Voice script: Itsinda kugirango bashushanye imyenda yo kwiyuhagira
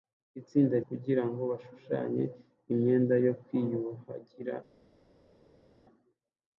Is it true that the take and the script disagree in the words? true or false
false